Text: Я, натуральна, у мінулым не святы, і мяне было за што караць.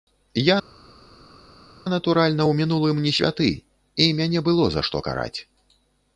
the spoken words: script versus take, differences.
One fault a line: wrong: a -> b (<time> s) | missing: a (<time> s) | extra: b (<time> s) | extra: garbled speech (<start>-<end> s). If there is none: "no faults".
no faults